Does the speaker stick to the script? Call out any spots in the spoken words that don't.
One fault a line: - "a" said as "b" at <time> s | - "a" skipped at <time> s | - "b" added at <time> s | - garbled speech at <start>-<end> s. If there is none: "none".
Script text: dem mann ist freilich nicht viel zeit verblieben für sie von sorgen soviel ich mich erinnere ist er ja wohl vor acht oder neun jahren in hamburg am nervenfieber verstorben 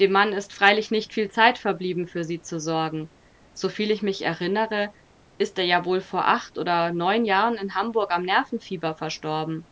- "von" said as "zu" at 2.4 s